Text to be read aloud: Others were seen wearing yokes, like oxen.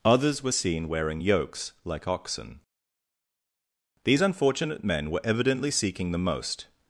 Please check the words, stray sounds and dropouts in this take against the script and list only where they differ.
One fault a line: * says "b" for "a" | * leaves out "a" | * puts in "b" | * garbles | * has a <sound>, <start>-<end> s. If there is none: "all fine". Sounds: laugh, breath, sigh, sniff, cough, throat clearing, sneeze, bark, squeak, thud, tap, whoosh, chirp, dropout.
* puts in "These unfortunate men were evidently seeking the most"